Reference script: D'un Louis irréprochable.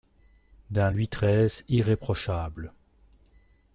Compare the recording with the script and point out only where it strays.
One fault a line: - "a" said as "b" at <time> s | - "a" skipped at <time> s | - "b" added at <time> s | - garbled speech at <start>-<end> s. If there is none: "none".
- "treize" added at 1.1 s